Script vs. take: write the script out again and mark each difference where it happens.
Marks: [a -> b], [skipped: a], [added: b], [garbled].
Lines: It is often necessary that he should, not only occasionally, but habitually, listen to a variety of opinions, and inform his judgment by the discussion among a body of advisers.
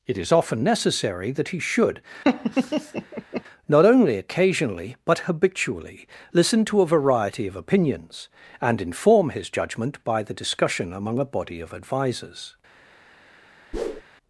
It is often necessary that he should, not only occasionally, but habitually, listen to a variety of opinions, and inform his judgment by the discussion among a body of advisers.